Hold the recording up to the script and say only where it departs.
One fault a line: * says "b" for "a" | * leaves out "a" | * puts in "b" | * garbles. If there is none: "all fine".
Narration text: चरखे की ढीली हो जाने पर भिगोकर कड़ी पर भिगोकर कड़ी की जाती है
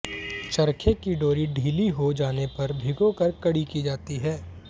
* puts in "डोरी"
* leaves out "पर भिगोकर कड़ी"